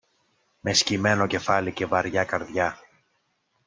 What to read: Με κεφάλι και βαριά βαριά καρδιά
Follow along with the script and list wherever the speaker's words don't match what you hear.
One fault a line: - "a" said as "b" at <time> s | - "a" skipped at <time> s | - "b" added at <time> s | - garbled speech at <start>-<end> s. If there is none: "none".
- "σκυμμένο" added at 0.7 s
- "βαριά" skipped at 2.2 s